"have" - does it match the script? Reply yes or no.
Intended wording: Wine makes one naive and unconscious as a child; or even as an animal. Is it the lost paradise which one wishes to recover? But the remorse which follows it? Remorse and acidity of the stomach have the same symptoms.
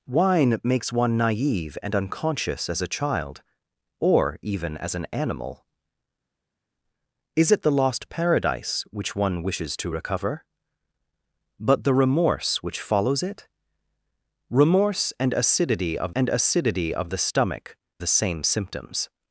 no